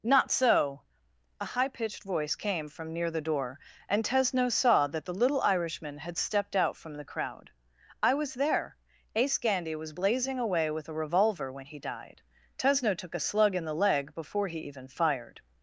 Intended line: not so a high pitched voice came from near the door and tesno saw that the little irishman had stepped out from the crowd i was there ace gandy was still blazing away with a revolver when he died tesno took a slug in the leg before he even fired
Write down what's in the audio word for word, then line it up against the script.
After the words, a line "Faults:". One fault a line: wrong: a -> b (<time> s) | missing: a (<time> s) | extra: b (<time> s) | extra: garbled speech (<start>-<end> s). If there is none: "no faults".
not so a high pitched voice came from near the door and tesno saw that the little irishman had stepped out from the crowd i was there ace gandy was blazing away with a revolver when he died tesno took a slug in the leg before he even fired
Faults:
missing: still (9.9 s)